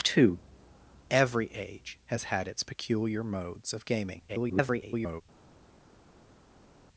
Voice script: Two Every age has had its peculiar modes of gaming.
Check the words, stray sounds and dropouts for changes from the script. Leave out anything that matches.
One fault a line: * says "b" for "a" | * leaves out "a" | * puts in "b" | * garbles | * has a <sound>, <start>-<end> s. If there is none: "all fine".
* garbles